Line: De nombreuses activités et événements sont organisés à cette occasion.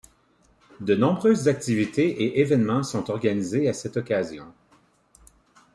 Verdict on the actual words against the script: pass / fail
pass